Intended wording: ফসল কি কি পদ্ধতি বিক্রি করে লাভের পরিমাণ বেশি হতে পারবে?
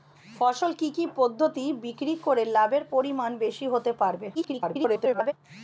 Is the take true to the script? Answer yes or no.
no